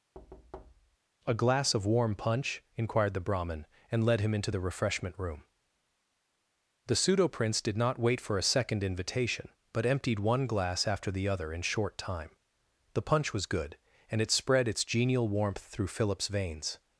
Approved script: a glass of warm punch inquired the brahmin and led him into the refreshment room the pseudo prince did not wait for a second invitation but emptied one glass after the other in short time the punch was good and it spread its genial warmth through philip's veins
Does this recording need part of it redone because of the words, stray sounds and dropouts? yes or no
yes